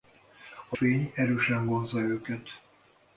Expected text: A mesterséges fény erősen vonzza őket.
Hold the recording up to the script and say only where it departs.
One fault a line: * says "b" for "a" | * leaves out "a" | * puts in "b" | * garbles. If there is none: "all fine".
* leaves out "mesterséges"